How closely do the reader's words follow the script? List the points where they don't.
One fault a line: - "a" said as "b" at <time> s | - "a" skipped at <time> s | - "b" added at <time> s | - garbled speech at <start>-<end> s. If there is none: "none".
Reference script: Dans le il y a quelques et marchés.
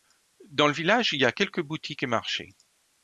- "village" added at 0.7 s
- "boutiques" added at 1.6 s